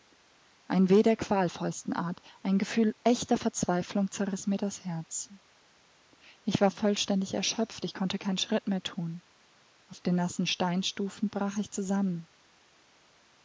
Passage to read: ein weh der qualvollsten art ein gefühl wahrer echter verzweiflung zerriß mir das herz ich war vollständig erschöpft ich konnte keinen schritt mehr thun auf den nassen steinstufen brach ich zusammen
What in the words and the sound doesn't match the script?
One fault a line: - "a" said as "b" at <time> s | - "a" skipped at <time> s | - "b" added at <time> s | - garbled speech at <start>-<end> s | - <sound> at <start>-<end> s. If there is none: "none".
- "wahrer" skipped at 3.0 s